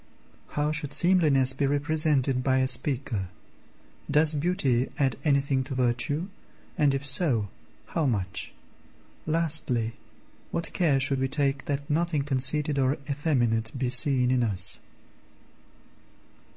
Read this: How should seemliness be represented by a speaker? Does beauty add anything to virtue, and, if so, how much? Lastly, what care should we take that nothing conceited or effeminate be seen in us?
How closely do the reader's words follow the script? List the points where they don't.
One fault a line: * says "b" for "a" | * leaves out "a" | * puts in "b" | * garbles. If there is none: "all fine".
all fine